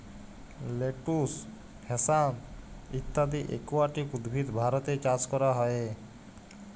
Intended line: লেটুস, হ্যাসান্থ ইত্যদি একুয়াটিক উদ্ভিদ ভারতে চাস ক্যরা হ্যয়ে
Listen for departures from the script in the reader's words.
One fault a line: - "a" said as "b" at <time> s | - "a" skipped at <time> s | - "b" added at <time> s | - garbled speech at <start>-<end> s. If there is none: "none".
none